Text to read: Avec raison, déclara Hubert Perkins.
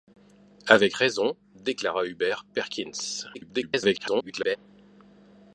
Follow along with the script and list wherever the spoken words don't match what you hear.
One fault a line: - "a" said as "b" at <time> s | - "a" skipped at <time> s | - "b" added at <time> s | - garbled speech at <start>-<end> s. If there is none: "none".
- garbled speech at 3.3-4.6 s